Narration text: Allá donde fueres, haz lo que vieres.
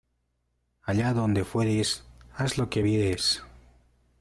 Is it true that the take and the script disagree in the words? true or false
false